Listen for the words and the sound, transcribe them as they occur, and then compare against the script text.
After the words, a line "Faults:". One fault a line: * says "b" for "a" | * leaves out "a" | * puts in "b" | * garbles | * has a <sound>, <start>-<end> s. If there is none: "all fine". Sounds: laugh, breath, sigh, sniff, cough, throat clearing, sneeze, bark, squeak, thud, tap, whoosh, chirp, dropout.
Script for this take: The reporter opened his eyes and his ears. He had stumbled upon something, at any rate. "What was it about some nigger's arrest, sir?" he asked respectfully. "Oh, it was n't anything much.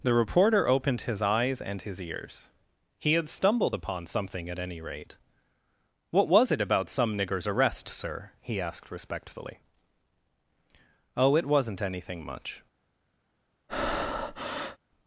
The reporter opened his eyes and his ears. He had stumbled upon something, at any rate. "What was it about some nigger's arrest, sir?" he asked respectfully. "Oh, it was n't anything much.
Faults:
* has a breath, 13.7-14.8 s